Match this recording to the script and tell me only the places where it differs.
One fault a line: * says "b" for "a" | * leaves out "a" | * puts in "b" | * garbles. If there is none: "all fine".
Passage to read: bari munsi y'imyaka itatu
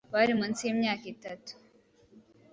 all fine